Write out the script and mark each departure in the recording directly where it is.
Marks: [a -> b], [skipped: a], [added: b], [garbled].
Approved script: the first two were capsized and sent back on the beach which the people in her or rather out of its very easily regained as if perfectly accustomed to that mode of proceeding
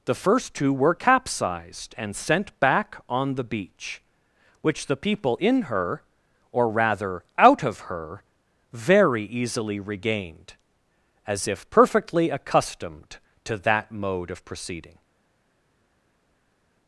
the first two were capsized and sent back on the beach which the people in her or rather out of [its -> her] very easily regained as if perfectly accustomed to that mode of proceeding